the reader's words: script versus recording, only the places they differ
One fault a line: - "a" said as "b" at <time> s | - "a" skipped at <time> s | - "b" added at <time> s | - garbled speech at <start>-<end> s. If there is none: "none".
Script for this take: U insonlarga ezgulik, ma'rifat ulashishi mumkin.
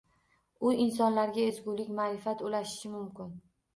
none